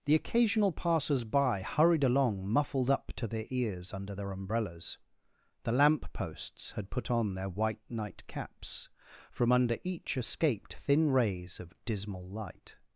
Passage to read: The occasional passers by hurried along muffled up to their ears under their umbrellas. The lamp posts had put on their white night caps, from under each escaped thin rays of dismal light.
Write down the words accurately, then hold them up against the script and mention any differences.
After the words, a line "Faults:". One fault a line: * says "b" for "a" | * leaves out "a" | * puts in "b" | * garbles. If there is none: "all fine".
The occasional passers by hurried along muffled up to their ears under their umbrellas. The lamp posts had put on their white night caps, from under each escaped thin rays of dismal light.
Faults:
all fine